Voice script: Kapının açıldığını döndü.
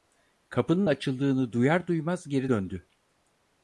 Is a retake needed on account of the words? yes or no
yes